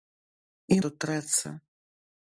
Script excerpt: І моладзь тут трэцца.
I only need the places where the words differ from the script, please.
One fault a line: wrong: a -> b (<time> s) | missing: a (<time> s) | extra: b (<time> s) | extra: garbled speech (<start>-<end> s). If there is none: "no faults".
missing: моладзь (0.8 s)